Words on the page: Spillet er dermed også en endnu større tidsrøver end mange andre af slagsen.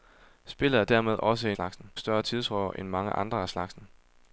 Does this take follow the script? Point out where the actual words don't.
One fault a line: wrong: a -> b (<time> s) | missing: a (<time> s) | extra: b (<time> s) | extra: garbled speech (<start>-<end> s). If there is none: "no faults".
wrong: endnu -> slagsen (1.5 s)